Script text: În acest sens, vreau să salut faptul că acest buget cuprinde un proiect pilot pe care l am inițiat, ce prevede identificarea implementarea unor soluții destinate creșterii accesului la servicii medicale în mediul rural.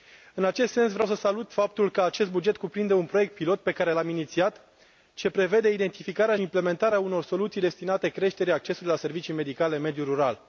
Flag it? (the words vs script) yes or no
no